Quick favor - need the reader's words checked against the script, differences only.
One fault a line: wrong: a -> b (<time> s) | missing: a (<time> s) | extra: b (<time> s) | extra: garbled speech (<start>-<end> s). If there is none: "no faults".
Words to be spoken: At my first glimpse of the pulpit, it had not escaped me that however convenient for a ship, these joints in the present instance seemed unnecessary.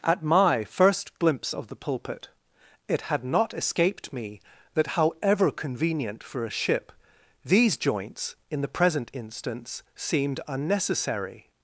no faults